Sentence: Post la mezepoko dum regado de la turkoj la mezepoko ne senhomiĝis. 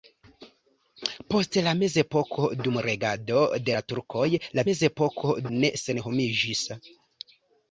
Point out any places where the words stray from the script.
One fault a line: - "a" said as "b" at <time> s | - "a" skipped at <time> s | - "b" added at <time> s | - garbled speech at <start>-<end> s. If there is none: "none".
none